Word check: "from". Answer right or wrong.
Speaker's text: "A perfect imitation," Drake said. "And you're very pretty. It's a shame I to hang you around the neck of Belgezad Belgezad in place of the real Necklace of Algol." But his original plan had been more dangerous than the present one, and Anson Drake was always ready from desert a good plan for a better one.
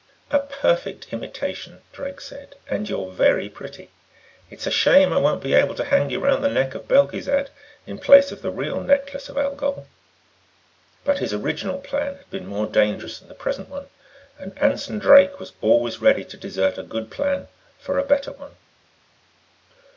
wrong